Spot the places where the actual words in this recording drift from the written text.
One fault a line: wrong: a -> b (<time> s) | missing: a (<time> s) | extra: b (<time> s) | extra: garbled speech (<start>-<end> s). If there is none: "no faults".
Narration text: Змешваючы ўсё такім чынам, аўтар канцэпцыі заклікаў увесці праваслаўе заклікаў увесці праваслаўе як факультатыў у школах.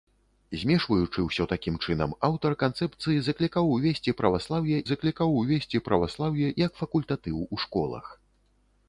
no faults